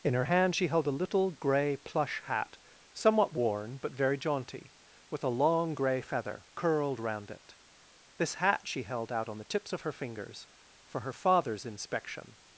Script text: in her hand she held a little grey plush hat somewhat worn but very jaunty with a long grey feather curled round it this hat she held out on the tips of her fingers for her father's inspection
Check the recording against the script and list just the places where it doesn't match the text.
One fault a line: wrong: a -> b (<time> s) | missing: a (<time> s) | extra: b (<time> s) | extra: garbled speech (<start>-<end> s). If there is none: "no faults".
no faults